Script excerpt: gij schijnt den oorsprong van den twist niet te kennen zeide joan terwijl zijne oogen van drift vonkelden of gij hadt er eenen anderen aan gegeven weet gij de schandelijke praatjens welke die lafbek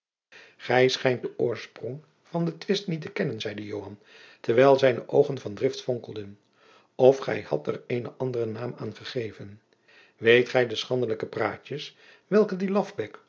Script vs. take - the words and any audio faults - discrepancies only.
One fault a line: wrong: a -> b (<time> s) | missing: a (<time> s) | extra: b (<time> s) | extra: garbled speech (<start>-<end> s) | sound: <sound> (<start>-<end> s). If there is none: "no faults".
extra: naam (8.5 s)